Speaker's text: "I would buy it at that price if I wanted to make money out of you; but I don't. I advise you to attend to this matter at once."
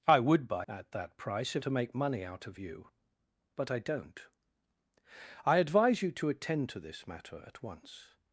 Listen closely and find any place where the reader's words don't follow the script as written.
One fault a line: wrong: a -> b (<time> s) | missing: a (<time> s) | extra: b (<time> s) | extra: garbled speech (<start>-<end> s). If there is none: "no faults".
missing: it (0.7 s)
missing: I wanted (1.6 s)